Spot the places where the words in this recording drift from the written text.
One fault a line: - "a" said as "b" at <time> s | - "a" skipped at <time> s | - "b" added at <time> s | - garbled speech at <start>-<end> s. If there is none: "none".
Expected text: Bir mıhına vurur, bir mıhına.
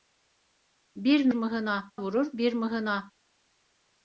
none